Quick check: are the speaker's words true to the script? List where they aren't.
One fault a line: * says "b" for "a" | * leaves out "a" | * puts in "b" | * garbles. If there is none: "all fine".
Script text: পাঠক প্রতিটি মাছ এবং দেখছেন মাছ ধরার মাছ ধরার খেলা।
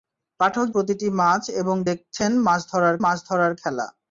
all fine